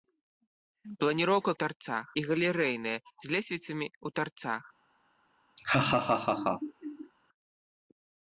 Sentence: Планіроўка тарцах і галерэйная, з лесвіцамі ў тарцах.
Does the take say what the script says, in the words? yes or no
yes